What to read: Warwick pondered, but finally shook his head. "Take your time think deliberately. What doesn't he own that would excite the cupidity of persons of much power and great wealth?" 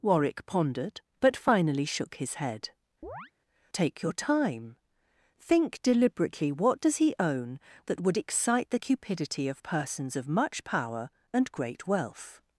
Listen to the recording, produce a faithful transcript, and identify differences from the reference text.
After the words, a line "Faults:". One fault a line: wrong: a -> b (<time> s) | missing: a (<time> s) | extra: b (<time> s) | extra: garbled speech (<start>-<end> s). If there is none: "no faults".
Warwick pondered, but finally shook his head. "Take your time think deliberately. What does he own that would excite the cupidity of persons of much power and great wealth?"
Faults:
wrong: doesn't -> does (6.8 s)